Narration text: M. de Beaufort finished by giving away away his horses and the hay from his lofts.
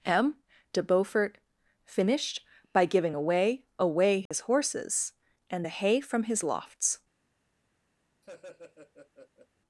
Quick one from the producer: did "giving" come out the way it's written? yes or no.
yes